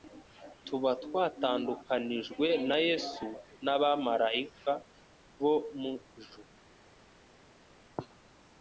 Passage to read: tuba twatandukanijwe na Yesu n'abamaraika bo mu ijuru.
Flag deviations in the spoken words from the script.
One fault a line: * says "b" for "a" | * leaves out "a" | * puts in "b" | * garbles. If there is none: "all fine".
all fine